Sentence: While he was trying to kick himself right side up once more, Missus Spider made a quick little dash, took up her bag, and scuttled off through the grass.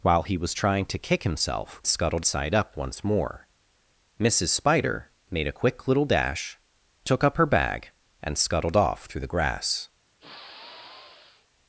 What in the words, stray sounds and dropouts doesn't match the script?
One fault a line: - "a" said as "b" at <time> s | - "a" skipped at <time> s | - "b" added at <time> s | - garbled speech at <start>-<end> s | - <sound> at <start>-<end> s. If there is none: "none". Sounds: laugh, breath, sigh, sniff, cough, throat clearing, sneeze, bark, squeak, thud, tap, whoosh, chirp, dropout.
- "right" said as "scuttled" at 1.9 s
- sigh at 10.2-11.5 s